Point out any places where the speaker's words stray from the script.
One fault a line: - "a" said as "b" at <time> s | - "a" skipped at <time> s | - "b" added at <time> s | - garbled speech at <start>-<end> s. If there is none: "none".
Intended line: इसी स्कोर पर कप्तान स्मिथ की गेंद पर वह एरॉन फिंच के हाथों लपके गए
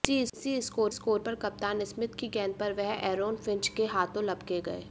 - "स्कोर" added at 0.9 s